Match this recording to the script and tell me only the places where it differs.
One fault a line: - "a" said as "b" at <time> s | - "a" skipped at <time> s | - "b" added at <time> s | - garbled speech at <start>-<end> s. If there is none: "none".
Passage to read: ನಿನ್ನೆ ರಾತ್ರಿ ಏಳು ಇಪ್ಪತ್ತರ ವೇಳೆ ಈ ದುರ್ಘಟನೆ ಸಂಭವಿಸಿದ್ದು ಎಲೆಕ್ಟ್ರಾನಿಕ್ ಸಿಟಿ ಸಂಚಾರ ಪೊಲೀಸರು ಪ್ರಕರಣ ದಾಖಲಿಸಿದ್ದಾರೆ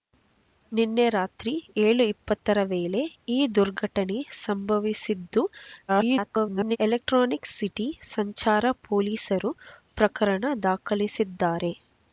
- garbled speech at 5.9-6.8 s